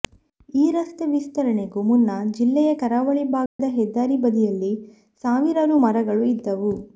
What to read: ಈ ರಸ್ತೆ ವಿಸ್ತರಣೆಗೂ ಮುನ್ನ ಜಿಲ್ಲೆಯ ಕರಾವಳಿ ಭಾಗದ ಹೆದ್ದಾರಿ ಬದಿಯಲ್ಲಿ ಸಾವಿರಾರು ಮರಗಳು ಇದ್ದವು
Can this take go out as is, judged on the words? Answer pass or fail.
pass